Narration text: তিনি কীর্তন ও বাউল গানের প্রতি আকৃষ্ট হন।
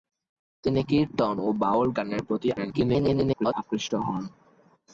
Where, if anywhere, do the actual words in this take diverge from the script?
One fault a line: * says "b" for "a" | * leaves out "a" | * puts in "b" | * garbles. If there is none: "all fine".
* garbles